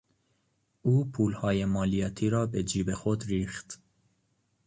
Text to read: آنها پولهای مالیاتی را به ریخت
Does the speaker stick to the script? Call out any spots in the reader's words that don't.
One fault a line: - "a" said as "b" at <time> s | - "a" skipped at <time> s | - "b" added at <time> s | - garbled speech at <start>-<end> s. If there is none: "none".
- "آنها" said as "او" at 0.8 s
- "جیب خود" added at 2.6 s